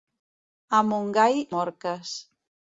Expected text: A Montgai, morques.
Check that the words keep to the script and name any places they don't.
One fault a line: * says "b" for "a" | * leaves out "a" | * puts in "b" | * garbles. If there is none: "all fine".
all fine